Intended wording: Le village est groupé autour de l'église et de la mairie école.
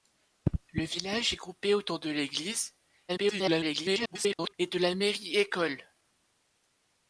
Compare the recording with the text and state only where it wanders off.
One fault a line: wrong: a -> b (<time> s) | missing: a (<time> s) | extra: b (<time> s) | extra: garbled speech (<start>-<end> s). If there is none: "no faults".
extra: garbled speech (3.1-4.5 s)